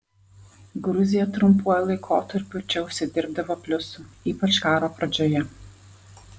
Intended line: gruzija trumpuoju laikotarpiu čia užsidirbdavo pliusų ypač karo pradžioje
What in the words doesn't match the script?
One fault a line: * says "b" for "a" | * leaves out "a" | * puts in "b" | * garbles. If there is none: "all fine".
all fine